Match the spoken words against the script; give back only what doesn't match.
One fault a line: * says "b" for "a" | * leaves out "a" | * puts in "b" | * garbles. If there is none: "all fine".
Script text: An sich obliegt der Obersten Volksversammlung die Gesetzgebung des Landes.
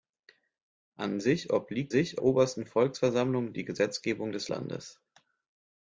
* says "sich" for "der"